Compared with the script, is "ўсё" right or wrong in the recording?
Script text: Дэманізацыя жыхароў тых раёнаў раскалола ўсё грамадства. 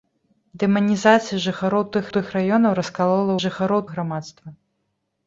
wrong